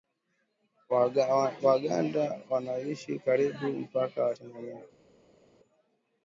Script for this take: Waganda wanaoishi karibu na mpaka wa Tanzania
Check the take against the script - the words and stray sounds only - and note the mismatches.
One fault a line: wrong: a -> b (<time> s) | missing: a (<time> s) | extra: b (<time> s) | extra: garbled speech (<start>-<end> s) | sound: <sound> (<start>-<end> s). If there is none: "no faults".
no faults